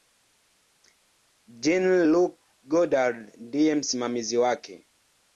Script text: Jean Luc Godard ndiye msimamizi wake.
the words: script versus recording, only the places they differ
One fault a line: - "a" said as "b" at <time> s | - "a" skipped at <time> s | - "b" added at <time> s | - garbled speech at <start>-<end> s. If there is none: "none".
none